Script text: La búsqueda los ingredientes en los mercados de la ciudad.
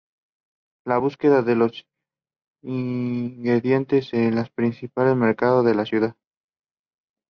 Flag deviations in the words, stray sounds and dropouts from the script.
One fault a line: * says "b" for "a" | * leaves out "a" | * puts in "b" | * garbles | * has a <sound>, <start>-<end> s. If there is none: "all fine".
* puts in "de"
* puts in "principales"